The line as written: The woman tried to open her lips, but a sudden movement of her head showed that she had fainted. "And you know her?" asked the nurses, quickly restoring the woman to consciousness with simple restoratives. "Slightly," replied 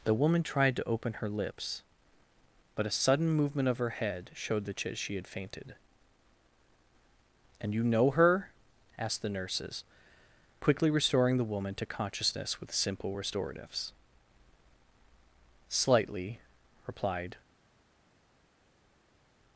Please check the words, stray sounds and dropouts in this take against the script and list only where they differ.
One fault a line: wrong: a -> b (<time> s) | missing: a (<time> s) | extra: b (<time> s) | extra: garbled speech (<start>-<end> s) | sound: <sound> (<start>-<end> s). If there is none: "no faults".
no faults